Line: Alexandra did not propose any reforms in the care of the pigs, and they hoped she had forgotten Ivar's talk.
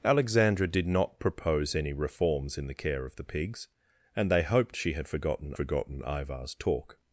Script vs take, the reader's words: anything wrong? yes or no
yes